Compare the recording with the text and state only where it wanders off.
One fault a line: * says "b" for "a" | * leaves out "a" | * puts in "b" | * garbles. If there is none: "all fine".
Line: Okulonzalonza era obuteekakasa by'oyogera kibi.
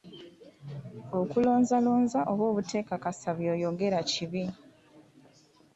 * says "oba" for "era"